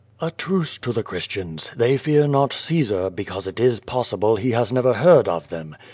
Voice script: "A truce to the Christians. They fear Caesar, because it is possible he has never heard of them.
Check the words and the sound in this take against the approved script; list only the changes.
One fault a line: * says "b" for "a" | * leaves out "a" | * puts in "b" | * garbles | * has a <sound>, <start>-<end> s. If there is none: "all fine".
* puts in "not"